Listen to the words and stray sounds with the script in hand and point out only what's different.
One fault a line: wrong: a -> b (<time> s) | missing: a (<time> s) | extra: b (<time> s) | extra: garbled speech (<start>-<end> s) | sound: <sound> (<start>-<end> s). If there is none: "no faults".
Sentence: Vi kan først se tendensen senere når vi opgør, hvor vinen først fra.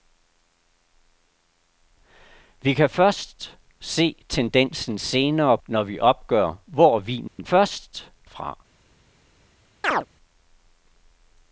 sound: dropout (7.3-7.4 s)
sound: chirp (9.8-10.1 s)